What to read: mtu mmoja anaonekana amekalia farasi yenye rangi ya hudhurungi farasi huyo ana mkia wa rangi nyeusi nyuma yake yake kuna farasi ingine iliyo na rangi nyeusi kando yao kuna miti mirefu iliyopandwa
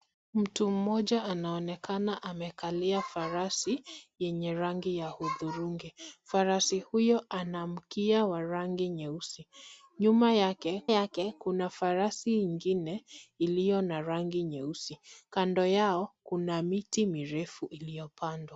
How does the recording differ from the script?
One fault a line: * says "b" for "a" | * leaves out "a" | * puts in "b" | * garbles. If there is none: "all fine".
all fine